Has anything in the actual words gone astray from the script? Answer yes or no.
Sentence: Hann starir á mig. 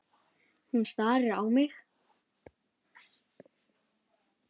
yes